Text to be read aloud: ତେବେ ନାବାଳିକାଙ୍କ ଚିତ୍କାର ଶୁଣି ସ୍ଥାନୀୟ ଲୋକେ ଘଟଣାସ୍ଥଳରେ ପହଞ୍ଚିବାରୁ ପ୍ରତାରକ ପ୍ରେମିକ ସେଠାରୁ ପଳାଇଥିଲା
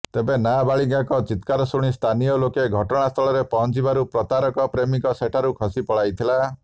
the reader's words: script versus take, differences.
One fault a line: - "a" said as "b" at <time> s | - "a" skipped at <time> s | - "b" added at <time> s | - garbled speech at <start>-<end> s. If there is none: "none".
- "ଖସି" added at 5.6 s